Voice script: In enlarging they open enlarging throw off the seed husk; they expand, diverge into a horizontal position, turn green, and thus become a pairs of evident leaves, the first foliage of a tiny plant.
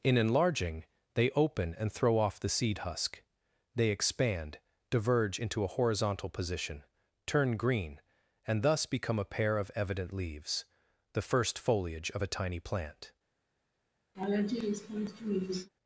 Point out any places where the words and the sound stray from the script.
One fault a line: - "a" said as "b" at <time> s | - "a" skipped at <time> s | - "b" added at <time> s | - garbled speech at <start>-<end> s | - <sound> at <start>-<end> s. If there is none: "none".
- "enlarging" said as "and" at 1.8 s
- "pairs" said as "pair" at 9.3 s
- laugh at 14.1-15.7 s